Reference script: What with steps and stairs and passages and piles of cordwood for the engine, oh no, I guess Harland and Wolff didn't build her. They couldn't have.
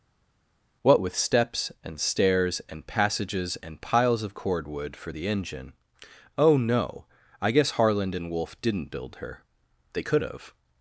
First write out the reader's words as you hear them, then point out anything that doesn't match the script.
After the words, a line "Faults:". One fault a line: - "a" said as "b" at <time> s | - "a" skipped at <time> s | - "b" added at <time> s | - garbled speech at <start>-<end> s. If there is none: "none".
What with steps and stairs and passages and piles of cordwood for the engine, oh no, I guess Harland and Wolff didn't build her. They could have.
Faults:
- "couldn't" said as "could" at 10.0 s